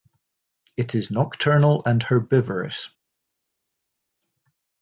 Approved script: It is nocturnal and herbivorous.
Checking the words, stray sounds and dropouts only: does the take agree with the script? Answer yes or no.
yes